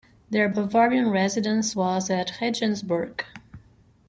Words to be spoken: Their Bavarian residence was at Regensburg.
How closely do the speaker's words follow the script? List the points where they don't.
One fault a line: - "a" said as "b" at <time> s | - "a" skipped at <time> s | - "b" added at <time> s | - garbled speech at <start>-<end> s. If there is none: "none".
none